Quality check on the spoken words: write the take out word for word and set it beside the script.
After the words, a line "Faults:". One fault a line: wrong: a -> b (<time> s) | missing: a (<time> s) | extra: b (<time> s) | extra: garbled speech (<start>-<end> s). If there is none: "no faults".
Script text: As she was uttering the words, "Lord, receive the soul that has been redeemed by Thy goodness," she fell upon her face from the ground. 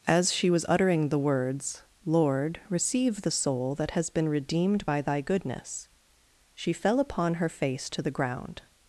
As she was uttering the words, "Lord, receive the soul that has been redeemed by Thy goodness," she fell upon her face to the ground.
Faults:
wrong: from -> to (7.9 s)